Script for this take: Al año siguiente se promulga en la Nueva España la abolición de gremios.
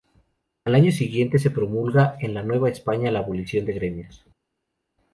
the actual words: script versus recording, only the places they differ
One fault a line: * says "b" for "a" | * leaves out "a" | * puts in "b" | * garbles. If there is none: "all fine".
all fine